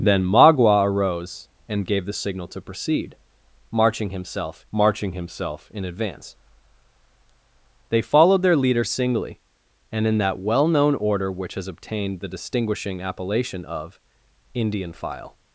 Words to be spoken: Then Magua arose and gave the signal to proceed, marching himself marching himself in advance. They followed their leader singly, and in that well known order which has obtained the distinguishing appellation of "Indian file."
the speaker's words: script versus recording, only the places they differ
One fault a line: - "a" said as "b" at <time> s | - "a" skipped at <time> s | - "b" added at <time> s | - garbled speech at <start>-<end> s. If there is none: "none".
none